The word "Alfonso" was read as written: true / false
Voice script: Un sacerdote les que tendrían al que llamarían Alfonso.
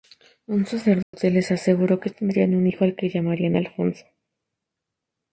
true